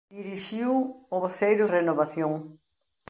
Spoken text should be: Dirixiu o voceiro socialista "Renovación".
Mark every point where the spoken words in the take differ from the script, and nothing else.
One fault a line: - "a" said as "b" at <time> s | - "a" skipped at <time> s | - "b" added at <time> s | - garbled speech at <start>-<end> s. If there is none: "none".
- "socialista" skipped at 1.6 s